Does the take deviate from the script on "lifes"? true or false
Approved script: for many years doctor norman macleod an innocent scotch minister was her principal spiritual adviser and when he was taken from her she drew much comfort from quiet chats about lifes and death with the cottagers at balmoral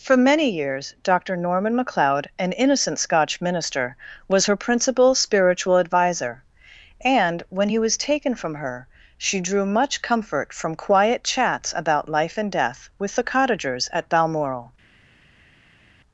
true